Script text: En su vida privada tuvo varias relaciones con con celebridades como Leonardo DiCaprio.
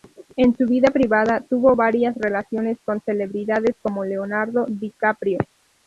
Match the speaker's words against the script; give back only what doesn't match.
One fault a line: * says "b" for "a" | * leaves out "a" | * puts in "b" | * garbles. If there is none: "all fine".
* leaves out "con"